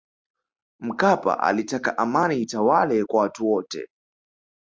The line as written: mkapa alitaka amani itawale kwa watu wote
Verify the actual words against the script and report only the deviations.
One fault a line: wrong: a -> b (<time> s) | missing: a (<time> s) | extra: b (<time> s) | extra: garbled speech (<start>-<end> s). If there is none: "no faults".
no faults